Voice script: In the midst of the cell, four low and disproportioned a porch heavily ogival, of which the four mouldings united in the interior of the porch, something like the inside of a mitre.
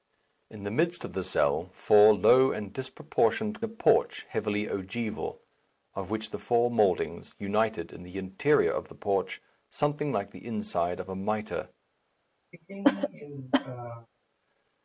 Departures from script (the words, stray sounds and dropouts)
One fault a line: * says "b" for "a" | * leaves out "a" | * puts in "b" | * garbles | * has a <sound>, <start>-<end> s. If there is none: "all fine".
* has a cough, 12.5-14.1 s